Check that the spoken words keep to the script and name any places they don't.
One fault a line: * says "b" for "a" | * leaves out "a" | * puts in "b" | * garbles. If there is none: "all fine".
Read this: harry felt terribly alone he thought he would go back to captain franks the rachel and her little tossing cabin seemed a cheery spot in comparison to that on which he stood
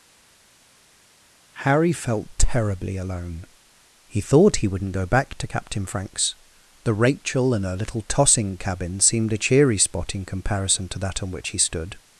* says "wouldn't" for "would"